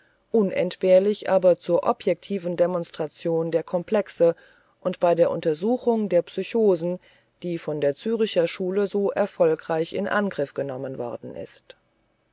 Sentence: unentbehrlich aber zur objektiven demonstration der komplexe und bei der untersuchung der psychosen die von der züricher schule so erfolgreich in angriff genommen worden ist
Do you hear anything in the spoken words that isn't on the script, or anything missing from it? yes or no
no